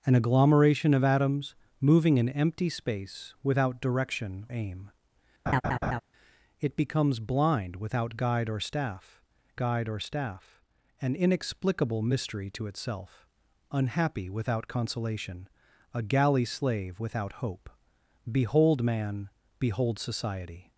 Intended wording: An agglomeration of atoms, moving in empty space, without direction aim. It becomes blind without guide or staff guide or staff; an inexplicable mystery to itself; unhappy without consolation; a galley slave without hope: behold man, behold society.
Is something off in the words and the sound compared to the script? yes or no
yes